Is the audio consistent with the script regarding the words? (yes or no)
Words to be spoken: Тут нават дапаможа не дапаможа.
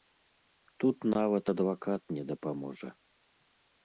no